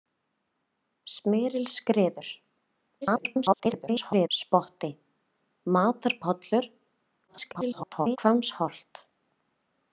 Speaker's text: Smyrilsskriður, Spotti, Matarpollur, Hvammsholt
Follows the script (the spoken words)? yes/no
no